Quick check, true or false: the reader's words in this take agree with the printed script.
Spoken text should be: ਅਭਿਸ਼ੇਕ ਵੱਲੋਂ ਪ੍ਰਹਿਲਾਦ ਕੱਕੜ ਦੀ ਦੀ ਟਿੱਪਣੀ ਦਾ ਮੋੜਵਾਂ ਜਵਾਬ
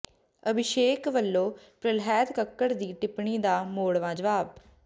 false